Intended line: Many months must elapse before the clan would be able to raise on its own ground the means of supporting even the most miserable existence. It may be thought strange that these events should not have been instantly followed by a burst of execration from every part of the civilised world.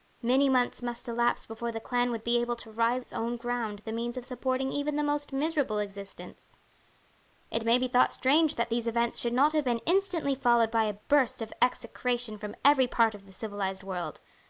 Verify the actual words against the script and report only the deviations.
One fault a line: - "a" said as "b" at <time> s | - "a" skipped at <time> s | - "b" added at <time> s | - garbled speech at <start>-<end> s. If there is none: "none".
- "on" skipped at 3.0 s